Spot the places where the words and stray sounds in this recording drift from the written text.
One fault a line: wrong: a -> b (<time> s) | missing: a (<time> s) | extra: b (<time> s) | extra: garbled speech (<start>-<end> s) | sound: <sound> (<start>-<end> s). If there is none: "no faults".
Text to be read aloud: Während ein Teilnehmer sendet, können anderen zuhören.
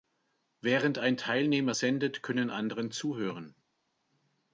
no faults